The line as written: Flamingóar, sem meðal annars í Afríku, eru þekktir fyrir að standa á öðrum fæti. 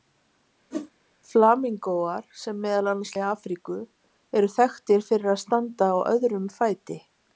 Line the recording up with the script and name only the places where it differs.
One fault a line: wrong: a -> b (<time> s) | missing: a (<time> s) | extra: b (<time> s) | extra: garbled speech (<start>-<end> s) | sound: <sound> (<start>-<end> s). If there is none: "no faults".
sound: whoosh (0.7-0.9 s)